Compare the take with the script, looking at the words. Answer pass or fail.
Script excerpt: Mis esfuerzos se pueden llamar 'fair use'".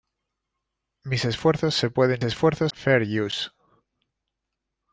fail